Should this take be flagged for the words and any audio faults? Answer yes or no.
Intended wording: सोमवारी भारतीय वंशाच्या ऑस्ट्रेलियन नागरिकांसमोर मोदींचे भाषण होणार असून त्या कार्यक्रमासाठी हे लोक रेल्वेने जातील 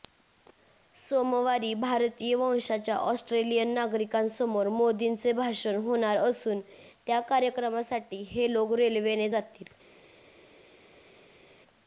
no